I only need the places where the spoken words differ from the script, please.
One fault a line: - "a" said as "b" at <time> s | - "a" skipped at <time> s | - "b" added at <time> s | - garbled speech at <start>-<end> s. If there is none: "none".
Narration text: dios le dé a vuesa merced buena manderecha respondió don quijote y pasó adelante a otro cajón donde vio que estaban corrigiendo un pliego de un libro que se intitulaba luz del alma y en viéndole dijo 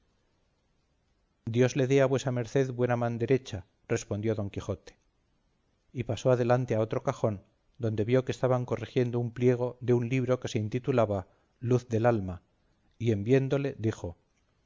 none